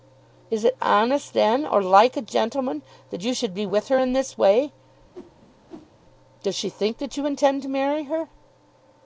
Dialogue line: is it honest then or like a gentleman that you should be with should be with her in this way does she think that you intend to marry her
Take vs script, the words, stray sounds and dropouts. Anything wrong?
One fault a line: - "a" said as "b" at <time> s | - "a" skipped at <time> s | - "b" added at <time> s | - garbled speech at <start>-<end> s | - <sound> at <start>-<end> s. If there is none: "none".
- "should be with" skipped at 3.9 s
- whoosh at 5.1-5.9 s